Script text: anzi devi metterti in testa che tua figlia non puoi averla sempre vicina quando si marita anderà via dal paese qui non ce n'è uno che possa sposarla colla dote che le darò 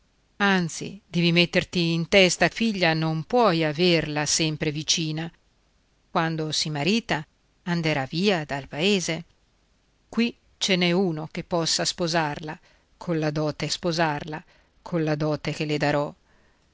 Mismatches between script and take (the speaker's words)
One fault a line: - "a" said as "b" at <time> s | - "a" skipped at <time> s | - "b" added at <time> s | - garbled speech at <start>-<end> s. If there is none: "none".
- "che tua" skipped at 2.5 s
- "non" skipped at 10.3 s
- "sposarla colla dote" added at 13.7 s